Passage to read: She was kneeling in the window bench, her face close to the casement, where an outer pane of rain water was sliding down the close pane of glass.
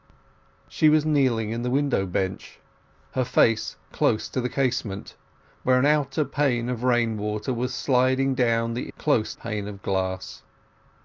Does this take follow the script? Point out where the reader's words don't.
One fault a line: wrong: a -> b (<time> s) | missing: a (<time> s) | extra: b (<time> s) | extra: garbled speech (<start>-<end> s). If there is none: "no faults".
no faults